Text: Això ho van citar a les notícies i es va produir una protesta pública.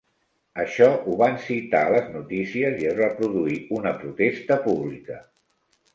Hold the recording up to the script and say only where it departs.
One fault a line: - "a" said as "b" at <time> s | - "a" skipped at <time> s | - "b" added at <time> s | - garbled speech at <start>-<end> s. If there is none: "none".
none